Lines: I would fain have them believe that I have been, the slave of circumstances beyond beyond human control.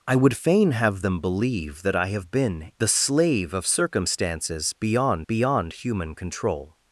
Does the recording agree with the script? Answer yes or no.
yes